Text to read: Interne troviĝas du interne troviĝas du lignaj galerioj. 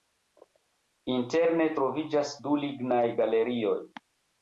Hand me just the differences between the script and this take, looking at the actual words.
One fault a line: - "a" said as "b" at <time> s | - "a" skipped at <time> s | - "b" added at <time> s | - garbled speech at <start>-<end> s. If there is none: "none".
- "interne troviĝas du" skipped at 2.6 s